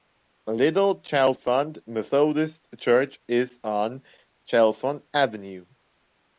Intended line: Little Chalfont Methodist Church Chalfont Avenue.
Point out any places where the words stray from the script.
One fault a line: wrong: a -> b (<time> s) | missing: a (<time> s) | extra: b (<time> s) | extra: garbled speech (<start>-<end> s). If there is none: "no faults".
extra: is on (3.3 s)